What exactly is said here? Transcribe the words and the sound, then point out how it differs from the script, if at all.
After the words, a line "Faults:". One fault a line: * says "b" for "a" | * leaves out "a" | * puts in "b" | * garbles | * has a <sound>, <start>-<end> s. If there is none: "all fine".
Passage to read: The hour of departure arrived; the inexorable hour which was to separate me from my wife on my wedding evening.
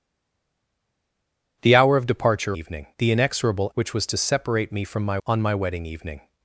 The hour of departure evening; the inexorable which was to separate me from my on my wedding evening.
Faults:
* says "evening" for "arrived"
* leaves out "hour"
* leaves out "wife"